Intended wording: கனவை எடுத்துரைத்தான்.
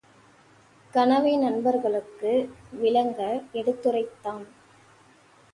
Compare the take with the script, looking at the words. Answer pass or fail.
fail